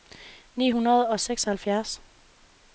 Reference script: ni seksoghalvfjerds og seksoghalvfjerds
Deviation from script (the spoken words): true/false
true